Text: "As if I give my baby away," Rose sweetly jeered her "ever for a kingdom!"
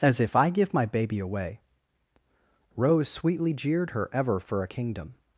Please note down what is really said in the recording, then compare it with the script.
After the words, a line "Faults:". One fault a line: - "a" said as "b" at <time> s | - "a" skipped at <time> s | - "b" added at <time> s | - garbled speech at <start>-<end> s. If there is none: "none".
"As if I give my baby away," Rose sweetly jeered her "ever for a kingdom!"
Faults:
none